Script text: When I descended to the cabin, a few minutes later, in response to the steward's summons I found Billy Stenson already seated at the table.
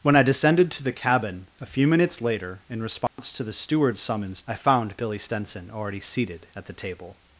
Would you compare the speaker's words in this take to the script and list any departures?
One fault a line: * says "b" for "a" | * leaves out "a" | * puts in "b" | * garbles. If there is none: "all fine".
all fine